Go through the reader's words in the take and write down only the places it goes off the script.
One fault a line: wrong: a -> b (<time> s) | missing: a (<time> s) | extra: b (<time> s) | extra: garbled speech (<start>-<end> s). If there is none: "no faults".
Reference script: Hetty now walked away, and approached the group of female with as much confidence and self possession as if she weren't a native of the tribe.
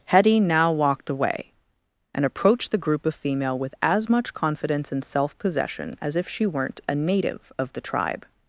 no faults